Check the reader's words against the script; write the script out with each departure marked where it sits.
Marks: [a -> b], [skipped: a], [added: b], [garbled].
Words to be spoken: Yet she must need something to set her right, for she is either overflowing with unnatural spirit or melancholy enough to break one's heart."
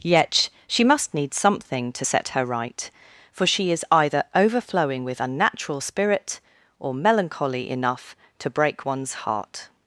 Yet she must need something to set her right, for she is either overflowing with unnatural spirit or melancholy enough to break one's heart."